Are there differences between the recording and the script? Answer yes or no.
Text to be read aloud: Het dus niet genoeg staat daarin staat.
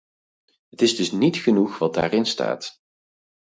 yes